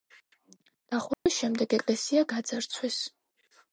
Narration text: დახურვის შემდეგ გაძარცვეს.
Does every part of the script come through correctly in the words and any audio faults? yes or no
no